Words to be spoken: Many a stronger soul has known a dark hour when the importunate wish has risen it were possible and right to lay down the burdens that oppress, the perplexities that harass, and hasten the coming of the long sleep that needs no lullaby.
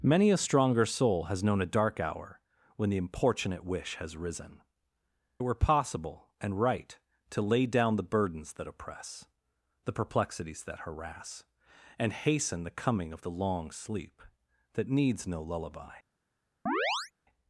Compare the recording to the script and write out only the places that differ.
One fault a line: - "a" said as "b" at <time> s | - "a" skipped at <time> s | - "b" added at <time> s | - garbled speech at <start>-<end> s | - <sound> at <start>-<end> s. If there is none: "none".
- chirp at 16.7-17.1 s